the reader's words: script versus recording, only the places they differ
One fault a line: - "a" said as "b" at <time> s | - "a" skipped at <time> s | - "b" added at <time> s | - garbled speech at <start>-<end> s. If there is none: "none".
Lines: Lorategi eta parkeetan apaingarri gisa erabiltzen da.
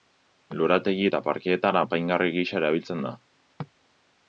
none